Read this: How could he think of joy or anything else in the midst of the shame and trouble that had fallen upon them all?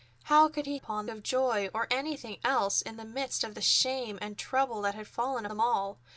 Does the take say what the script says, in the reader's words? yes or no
no